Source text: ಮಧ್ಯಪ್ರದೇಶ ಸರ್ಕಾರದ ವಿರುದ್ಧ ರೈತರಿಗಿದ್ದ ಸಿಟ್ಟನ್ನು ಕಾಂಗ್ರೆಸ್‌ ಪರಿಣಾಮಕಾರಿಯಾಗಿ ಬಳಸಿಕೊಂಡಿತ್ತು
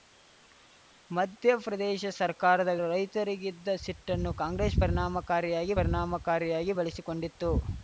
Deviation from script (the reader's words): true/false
true